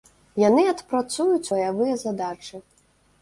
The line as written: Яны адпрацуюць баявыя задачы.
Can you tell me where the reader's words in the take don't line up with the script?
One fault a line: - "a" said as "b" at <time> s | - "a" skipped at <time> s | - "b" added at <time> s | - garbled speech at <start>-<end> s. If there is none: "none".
none